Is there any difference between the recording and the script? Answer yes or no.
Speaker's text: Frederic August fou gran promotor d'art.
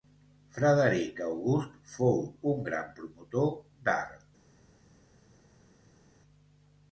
yes